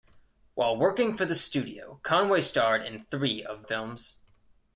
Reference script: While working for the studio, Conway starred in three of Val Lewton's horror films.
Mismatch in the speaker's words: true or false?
true